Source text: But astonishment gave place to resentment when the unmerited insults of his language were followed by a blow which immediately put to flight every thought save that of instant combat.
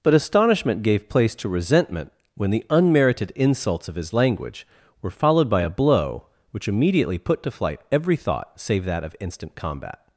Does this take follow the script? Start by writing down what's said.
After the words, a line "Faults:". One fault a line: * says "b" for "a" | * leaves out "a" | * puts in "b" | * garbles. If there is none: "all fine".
But astonishment gave place to resentment when the unmerited insults of his language were followed by a blow which immediately put to flight every thought save that of instant combat.
Faults:
all fine